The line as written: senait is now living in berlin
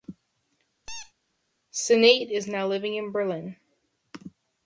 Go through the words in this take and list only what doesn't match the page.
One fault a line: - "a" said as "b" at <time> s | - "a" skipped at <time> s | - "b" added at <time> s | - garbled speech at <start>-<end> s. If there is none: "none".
none